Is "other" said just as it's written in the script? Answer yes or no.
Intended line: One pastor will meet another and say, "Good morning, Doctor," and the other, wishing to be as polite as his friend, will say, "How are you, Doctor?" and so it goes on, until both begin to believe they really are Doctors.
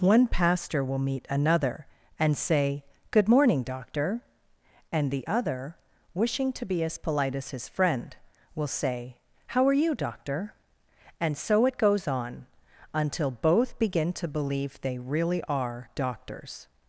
yes